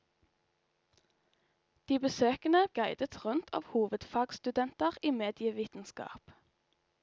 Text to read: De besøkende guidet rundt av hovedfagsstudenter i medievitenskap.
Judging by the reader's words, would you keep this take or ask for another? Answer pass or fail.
pass